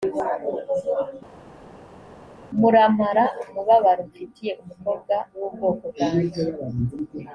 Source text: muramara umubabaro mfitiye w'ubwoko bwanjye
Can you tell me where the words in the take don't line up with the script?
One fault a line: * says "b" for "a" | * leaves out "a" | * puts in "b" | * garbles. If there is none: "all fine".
* puts in "umukobwa"